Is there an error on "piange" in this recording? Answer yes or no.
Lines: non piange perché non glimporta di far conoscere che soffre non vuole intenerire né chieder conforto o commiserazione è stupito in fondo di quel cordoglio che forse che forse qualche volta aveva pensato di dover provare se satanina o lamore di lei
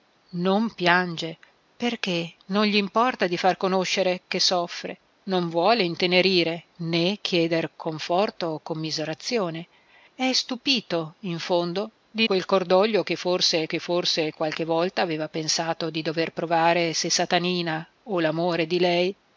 no